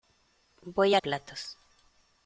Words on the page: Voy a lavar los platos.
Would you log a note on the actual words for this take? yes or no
yes